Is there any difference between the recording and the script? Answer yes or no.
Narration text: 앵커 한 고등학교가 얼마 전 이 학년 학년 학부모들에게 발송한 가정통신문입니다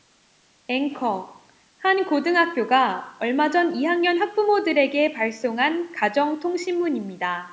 yes